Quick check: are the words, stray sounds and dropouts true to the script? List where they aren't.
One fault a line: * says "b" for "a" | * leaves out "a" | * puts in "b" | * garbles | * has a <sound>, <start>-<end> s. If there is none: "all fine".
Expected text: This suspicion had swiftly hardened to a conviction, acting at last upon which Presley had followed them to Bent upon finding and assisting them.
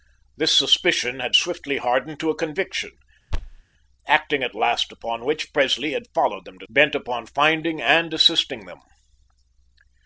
* has a thud, 3.3-3.6 s